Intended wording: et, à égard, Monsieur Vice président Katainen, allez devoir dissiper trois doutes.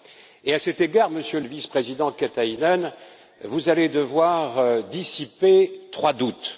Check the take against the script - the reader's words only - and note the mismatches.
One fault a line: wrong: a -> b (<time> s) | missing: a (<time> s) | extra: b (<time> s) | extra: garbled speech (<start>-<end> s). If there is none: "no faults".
extra: cet (0.6 s)
extra: le (1.4 s)
extra: vous (3.4 s)